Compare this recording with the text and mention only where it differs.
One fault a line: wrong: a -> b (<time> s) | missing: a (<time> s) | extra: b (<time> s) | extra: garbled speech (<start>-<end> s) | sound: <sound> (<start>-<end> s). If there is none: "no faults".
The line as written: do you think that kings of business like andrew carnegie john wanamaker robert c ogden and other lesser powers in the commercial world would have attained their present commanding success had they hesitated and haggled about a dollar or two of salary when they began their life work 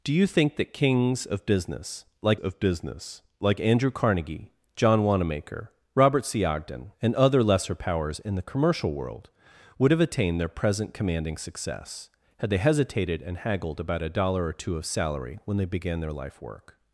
extra: of business like (2.4 s)